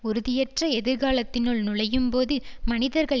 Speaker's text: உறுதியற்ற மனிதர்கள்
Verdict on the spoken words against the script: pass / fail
fail